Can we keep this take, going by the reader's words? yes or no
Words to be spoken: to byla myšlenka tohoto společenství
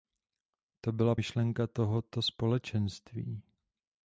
yes